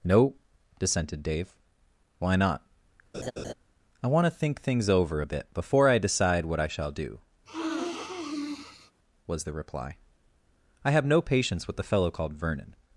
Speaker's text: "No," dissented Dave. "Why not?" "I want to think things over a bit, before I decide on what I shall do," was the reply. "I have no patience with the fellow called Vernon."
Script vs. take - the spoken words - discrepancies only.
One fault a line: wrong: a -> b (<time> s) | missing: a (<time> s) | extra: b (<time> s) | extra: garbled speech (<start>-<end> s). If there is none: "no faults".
missing: on (6.5 s)